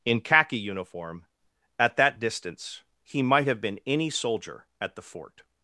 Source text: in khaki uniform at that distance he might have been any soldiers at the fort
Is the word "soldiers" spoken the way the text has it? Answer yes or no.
no